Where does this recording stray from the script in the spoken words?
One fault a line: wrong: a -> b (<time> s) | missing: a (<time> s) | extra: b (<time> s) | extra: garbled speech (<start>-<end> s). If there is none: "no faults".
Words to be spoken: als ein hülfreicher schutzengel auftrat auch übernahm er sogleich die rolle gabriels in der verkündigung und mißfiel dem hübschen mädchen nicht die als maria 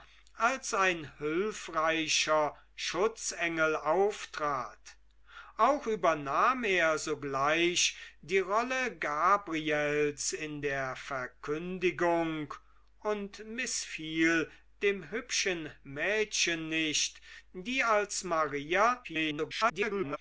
extra: garbled speech (19.0-20.2 s)